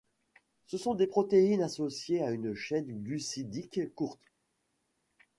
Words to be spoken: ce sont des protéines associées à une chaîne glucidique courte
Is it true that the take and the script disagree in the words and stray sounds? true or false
false